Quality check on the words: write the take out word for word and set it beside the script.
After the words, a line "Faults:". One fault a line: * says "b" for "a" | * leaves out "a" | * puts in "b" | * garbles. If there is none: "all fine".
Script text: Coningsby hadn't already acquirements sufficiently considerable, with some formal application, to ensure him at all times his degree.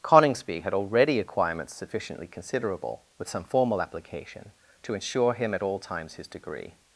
Coningsby had already acquirements sufficiently considerable, with some formal application, to ensure him at all times his degree.
Faults:
* says "had" for "hadn't"